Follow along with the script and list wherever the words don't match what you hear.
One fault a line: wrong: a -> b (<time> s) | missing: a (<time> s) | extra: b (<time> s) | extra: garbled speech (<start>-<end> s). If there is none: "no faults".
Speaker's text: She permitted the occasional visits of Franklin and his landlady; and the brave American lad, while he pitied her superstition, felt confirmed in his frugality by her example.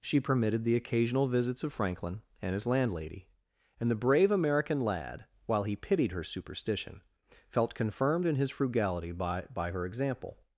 extra: by (9.5 s)